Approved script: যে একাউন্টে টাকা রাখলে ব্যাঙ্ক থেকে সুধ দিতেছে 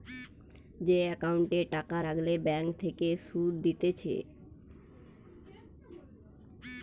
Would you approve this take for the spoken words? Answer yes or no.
yes